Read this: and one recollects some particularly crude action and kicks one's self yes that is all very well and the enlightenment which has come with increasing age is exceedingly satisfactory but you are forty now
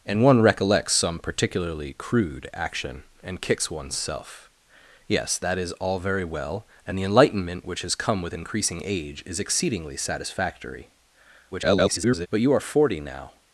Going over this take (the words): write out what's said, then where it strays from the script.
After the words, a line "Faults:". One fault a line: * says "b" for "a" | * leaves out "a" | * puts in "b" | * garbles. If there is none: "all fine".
and one recollects some particularly crude action and kicks one's self yes that is all very well and the enlightenment which has come with increasing age is exceedingly satisfactory [garbled] but you are forty now
Faults:
* garbles